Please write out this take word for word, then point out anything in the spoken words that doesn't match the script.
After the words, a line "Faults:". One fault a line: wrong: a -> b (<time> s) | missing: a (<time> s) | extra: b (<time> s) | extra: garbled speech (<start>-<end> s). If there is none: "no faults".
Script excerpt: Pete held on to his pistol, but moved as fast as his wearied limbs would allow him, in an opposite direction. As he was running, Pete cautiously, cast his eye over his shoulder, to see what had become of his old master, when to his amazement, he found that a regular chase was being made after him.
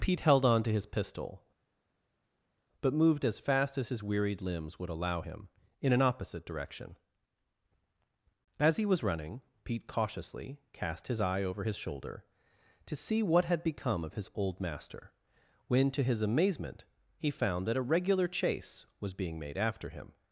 Pete held on to his pistol, but moved as fast as his wearied limbs would allow him, in an opposite direction. As he was running, Pete cautiously, cast his eye over his shoulder, to see what had become of his old master, when to his amazement, he found that a regular chase was being made after him.
Faults:
no faults